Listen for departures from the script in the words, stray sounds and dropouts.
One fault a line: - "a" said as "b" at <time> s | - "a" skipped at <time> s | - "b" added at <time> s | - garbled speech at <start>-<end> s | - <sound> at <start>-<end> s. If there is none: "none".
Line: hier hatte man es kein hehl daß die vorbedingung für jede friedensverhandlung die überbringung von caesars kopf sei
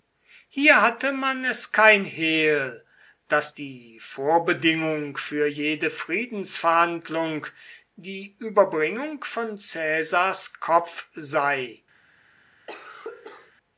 - cough at 12.7-13.5 s